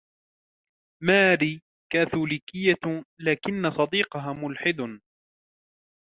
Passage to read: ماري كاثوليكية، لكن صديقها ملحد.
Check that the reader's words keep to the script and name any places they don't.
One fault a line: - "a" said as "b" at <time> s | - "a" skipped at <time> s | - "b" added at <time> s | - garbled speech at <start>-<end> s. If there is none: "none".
none